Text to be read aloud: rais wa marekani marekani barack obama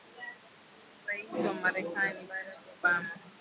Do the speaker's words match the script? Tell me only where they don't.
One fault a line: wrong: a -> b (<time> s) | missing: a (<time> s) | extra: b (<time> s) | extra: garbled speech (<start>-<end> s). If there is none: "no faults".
missing: marekani (2.2 s)